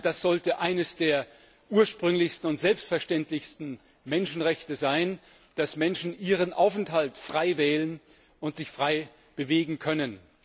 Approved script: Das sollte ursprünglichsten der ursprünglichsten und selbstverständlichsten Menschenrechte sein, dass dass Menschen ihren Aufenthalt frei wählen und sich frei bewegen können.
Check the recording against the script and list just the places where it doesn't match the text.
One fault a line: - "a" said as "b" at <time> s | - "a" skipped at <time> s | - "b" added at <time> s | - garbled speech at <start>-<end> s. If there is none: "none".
- "ursprünglichsten" said as "eines" at 0.6 s
- "dass" skipped at 5.8 s